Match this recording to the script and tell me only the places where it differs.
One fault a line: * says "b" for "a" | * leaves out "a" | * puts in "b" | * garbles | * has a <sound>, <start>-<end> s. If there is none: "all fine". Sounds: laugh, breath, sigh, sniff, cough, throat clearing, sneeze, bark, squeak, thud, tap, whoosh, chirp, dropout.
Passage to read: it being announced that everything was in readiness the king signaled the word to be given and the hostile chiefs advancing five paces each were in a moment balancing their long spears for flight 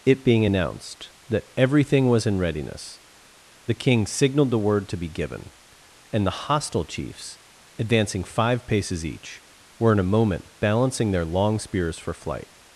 all fine